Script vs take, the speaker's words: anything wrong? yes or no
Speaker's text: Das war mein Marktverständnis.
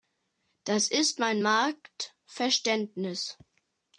yes